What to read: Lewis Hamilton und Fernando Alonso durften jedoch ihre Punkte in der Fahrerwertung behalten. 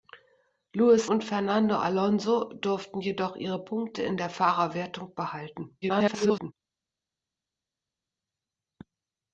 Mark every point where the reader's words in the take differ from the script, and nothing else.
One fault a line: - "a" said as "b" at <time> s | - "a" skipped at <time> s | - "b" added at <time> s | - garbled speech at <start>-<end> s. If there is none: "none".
- "Hamilton" skipped at 1.1 s
- garbled speech at 5.8-6.5 s